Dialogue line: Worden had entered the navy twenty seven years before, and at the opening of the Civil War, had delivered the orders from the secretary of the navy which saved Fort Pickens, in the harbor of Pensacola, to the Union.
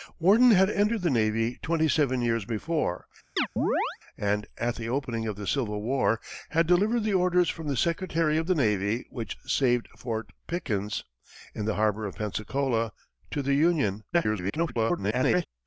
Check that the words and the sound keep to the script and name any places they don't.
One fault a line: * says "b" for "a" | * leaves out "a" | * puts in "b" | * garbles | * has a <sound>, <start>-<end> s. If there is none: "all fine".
* has a chirp, 3.4-4.0 s
* garbles